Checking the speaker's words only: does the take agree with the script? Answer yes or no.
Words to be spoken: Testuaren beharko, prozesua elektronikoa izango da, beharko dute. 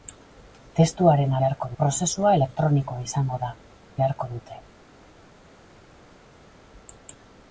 yes